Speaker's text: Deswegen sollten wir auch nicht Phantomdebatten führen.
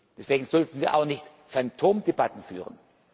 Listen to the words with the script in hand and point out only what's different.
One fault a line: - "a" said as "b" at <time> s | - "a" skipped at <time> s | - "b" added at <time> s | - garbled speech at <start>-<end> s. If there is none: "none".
none